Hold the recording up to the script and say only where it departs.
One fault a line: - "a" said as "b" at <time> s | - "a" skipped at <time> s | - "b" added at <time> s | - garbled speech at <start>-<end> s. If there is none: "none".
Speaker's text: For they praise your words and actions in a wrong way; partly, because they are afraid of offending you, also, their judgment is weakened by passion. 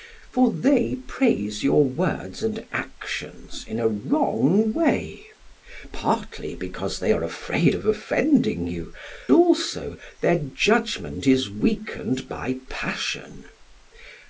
none